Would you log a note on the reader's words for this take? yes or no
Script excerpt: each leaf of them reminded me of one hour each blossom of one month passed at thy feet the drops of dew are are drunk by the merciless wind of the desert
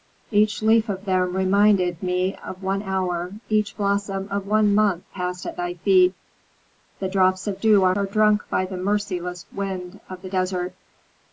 no